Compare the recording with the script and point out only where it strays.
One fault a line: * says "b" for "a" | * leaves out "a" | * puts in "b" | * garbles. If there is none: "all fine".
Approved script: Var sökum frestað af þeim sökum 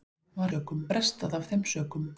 all fine